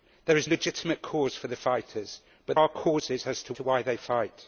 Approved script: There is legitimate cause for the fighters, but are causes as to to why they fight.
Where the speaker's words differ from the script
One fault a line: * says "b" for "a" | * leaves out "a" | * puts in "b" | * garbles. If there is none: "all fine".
all fine